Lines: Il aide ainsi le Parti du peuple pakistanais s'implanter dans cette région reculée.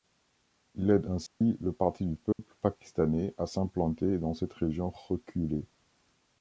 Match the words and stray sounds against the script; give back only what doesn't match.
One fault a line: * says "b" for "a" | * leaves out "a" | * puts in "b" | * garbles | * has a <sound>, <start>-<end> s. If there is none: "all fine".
* has a dropout, 1.3-1.4 s
* has a dropout, 2.3-2.4 s
* puts in "à"